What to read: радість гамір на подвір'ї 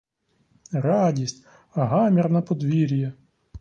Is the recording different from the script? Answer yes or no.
no